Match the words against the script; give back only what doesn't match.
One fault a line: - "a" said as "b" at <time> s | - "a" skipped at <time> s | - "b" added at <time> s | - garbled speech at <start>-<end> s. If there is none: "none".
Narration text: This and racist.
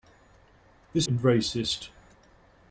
none